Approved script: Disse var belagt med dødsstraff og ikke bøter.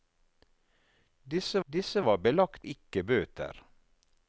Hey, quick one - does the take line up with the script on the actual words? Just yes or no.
no